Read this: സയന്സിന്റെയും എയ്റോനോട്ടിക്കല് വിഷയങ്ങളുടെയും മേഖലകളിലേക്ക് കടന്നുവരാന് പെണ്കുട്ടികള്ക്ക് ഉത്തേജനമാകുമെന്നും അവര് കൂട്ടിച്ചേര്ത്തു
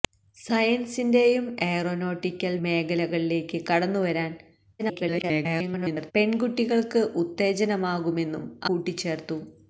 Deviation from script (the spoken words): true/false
true